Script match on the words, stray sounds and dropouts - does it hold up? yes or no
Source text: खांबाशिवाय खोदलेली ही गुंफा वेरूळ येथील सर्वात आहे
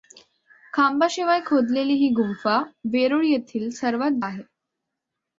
yes